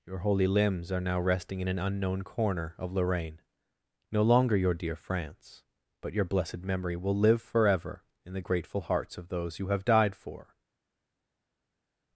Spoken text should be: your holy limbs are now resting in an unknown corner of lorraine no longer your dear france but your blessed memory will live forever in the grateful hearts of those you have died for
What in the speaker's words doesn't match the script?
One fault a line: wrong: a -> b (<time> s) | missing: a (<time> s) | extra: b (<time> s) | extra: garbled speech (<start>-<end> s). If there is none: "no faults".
no faults